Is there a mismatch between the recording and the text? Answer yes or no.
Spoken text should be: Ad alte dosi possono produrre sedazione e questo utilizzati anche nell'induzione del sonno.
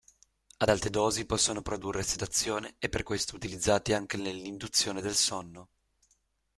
yes